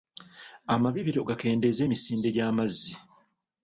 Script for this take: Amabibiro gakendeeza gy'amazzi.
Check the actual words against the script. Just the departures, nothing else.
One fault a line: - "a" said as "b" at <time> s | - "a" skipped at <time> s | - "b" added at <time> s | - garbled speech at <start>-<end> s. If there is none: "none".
- "emisinde" added at 1.8 s